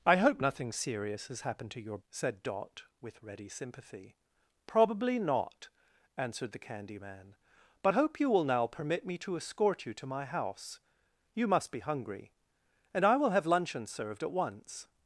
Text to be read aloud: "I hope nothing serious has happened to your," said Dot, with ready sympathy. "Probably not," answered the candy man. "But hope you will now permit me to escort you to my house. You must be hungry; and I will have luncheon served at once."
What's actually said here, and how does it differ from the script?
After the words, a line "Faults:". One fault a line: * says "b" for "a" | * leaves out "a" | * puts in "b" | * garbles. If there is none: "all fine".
"I hope nothing serious has happened to your," said Dot, with ready sympathy. "Probably not," answered the candy man. "But hope you will now permit me to escort you to my house. You must be hungry; and I will have luncheon served at once."
Faults:
all fine